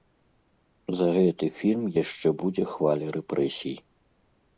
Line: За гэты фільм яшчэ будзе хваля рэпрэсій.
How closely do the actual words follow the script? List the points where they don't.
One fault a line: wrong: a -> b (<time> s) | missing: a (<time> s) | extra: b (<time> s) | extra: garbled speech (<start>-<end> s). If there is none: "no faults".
no faults